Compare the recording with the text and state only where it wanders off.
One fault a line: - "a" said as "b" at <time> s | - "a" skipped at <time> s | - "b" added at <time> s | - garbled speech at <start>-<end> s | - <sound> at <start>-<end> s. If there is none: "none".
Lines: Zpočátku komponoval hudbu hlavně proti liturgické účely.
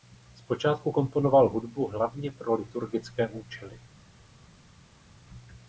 - "proti" said as "pro" at 2.3 s